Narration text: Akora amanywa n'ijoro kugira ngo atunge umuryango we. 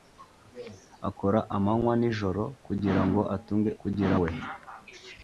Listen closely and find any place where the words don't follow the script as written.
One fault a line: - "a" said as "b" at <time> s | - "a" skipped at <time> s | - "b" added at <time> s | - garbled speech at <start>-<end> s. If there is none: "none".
- "umuryango" said as "kugira" at 3.8 s